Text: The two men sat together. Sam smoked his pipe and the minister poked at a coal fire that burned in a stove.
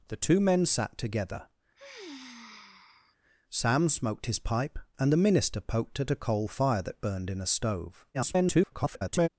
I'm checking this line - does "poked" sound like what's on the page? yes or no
yes